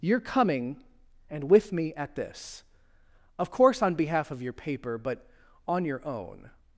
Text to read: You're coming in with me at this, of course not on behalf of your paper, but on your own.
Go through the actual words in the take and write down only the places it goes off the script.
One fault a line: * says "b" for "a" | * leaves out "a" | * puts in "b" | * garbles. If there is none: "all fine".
* says "and" for "in"
* leaves out "not"